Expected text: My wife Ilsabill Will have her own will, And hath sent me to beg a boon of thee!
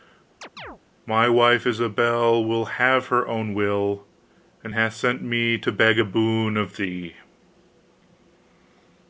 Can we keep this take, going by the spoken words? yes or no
yes